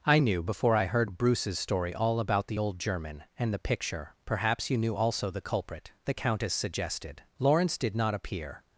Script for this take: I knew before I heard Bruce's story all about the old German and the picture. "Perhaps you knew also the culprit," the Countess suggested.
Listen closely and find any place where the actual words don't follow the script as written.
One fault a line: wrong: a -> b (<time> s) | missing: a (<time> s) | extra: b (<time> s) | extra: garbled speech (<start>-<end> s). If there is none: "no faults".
extra: Lawrence did not appear (7.4 s)